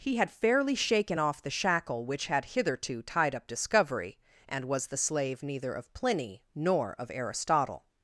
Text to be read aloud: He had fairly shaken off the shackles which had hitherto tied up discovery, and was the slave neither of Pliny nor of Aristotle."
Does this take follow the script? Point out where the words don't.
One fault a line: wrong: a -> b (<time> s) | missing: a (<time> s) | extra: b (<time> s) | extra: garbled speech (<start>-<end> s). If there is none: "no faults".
wrong: shackles -> shackle (1.5 s)